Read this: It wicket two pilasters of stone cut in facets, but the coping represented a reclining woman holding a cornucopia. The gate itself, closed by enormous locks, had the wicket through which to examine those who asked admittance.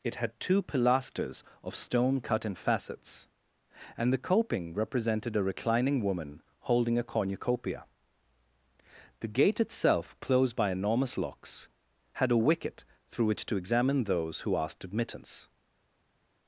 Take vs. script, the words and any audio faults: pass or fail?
fail